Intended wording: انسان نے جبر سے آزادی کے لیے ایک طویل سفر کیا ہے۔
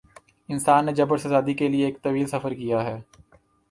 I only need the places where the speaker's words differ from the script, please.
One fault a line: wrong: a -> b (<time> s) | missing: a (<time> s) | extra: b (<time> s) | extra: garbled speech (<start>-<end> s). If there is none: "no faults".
no faults